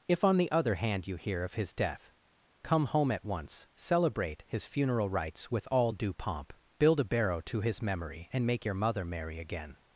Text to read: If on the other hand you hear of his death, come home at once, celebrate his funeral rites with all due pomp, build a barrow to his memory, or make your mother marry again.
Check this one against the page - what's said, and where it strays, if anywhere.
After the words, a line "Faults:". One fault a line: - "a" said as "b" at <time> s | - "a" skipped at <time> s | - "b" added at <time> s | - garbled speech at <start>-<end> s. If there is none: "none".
If on the other hand you hear of his death, come home at once, celebrate his funeral rites with all due pomp, build a barrow to his memory, and make your mother marry again.
Faults:
- "or" said as "and" at 8.3 s